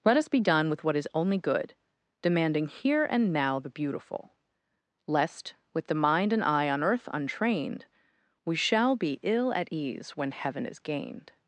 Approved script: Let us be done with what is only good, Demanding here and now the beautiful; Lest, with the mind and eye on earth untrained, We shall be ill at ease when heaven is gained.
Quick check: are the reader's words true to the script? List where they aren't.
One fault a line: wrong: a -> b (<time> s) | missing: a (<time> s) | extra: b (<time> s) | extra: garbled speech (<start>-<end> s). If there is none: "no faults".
no faults